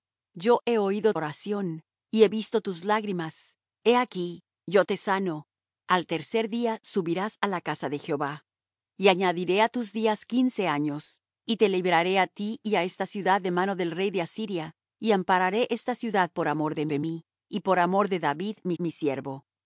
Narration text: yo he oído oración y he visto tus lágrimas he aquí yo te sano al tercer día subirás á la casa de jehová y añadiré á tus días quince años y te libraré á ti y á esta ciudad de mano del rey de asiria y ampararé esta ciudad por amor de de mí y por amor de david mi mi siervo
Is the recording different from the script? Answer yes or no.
no